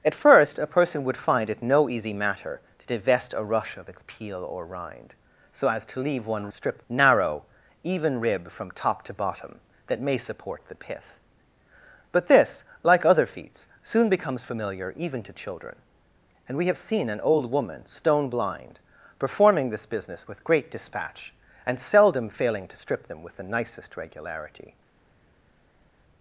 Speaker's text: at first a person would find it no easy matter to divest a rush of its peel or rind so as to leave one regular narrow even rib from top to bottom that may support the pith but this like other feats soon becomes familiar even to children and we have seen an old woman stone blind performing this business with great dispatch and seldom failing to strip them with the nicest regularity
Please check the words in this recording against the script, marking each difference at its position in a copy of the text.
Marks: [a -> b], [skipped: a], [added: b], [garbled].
at first a person would find it no easy matter to divest a rush of its peel or rind so as to leave one [regular -> strip] narrow even rib from top to bottom that may support the pith but this like other feats soon becomes familiar even to children and we have seen an old woman stone blind performing this business with great dispatch and seldom failing to strip them with the nicest regularity